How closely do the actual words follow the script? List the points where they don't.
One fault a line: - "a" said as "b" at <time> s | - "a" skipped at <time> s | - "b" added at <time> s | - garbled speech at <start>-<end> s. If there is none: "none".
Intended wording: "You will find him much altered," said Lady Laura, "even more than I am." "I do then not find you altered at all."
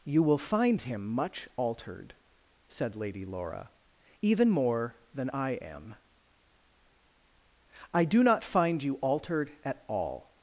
- "then" skipped at 8.2 s